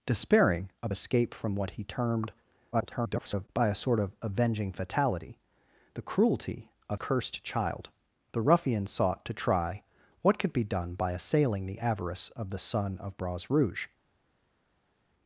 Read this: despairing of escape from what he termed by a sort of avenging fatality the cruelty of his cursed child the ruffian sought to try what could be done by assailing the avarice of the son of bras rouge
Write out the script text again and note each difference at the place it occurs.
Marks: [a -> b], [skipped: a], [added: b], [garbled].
despairing of escape from what he termed [garbled] by a sort of avenging fatality the cruelty of [skipped: his] cursed child the ruffian sought to try what could be done by assailing the avarice of the son of bras rouge